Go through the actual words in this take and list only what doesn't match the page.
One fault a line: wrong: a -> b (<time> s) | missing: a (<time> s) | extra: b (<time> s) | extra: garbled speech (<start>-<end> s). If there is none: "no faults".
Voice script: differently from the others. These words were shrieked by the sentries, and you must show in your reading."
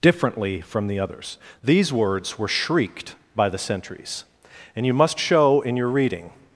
no faults